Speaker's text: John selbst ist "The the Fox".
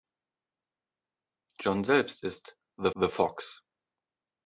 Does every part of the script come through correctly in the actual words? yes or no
yes